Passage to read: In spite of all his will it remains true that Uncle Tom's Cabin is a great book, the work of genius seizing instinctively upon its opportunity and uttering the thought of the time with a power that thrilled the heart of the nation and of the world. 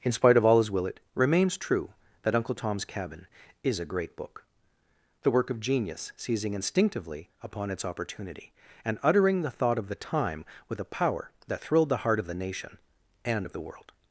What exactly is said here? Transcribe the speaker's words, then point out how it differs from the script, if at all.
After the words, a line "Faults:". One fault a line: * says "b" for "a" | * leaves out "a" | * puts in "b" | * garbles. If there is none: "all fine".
In spite of all his will it remains true that Uncle Tom's Cabin is a great book, the work of genius seizing instinctively upon its opportunity and uttering the thought of the time with a power that thrilled the heart of the nation and of the world.
Faults:
all fine